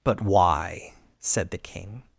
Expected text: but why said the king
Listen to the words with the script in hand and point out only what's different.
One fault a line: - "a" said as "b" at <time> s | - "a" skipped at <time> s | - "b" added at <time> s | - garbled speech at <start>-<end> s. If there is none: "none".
none